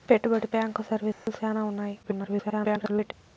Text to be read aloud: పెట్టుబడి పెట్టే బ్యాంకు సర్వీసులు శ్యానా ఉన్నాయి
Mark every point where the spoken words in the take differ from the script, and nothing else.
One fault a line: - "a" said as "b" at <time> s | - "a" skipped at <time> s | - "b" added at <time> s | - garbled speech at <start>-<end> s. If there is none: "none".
- "పెట్టే" skipped at 0.5 s
- garbled speech at 2.0-3.1 s